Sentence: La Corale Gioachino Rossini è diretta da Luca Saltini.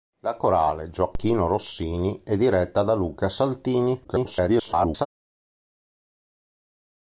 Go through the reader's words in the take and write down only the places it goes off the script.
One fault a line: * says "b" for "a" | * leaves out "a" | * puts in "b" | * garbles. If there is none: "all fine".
* garbles